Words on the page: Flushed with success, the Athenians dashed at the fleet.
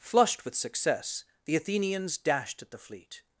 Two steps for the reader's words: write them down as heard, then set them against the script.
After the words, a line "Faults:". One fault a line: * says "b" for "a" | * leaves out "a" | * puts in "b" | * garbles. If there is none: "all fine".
Flushed with success, the Athenians dashed at the fleet.
Faults:
all fine